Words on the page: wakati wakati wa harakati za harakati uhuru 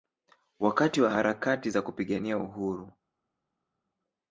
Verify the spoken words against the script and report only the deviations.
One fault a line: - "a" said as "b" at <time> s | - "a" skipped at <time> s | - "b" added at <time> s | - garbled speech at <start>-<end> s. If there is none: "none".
- "wakati" skipped at 1.0 s
- "harakati" said as "kupigania" at 1.8 s